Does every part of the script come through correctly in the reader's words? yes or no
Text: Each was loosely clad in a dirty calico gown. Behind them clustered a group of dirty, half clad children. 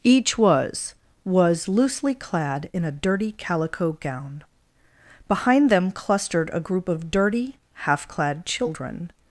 no